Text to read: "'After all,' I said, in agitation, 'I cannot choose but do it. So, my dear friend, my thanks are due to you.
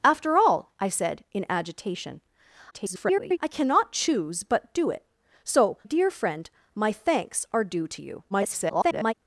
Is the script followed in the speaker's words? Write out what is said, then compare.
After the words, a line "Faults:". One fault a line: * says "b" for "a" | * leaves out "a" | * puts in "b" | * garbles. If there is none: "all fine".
"'After all,' I said, in agitation, [garbled] 'I cannot choose but do it. So, dear friend, my thanks are due to you. [garbled]
Faults:
* garbles
* leaves out "my"
* garbles